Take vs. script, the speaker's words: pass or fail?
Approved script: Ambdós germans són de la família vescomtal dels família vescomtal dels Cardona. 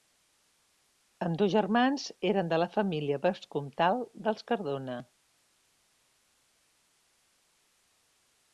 fail